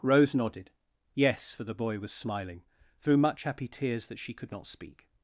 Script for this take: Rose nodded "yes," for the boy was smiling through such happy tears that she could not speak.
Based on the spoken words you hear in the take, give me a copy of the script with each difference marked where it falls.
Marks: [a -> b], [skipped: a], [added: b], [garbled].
Rose nodded "yes," for the boy was smiling through [such -> much] happy tears that she could not speak.